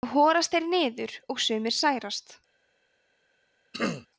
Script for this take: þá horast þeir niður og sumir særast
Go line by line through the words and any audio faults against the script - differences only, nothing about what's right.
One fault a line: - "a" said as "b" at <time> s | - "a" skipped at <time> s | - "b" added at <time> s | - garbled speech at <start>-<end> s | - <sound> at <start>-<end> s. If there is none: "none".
- throat clearing at 3.7-4.1 s